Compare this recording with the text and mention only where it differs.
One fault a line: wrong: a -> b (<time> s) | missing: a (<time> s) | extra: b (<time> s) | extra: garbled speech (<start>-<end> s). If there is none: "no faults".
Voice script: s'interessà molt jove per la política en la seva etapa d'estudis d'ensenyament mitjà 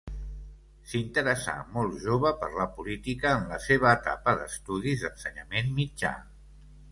no faults